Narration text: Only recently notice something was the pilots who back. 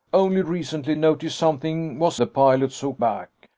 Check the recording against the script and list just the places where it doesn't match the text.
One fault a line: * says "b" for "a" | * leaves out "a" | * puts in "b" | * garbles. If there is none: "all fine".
all fine